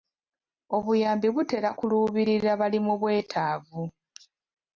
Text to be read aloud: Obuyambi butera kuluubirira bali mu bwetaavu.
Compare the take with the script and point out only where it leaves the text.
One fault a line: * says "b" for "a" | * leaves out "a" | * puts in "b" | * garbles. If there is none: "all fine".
all fine